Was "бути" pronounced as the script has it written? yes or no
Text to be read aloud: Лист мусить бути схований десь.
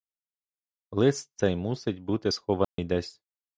yes